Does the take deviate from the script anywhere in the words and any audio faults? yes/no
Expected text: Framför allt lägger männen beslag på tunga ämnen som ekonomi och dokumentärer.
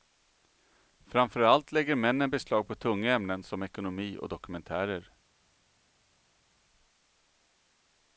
no